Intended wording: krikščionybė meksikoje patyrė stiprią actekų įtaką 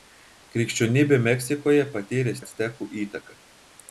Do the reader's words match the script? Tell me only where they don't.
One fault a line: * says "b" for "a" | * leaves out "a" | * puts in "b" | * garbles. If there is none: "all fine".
* leaves out "stiprią"